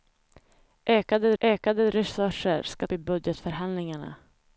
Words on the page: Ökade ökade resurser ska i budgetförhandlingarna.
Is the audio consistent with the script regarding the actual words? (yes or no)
yes